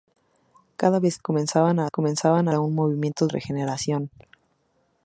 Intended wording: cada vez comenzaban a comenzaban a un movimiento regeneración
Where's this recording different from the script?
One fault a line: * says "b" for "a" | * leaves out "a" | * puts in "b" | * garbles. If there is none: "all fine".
all fine